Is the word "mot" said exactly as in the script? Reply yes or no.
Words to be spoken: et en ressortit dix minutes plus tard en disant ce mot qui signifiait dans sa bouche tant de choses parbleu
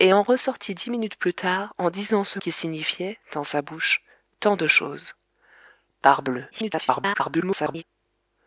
no